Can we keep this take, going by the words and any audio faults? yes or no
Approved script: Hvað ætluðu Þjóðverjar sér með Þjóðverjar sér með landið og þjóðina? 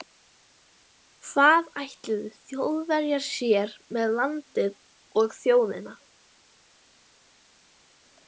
no